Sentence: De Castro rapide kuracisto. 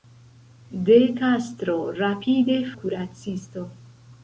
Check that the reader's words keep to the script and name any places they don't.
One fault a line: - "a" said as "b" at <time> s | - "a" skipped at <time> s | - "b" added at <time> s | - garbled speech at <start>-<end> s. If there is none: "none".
none